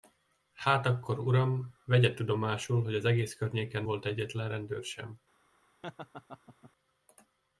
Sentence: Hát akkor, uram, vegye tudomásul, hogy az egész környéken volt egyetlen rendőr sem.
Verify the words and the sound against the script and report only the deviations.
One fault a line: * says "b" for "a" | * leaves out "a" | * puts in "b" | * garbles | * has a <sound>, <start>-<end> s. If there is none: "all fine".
* has a laugh, 5.8-6.7 s